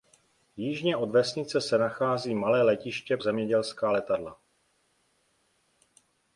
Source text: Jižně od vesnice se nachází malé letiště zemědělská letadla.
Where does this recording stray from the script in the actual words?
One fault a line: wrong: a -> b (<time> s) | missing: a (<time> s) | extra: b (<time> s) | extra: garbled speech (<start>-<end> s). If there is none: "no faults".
no faults